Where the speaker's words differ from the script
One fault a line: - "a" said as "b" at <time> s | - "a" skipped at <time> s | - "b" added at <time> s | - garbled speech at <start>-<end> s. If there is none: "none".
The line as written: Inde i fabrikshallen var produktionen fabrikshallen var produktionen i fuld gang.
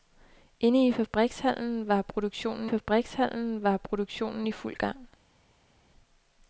none